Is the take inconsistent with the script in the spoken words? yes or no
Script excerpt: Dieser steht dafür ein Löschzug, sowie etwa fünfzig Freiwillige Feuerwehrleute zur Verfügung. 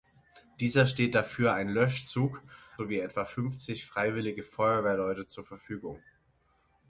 no